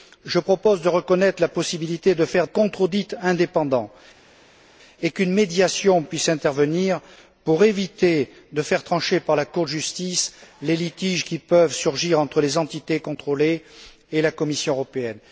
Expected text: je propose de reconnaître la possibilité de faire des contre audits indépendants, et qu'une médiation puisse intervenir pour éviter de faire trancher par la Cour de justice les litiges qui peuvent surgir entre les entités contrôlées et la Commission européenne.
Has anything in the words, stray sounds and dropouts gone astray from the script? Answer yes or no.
yes